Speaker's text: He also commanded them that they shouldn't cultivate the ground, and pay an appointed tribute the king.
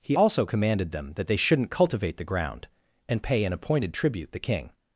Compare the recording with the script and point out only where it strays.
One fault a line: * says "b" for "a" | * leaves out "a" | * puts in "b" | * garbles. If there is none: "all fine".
all fine